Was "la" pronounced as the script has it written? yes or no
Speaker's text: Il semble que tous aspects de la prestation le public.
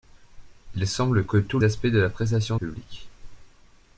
yes